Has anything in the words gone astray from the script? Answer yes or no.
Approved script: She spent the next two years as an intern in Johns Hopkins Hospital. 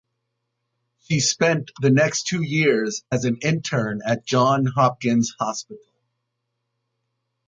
yes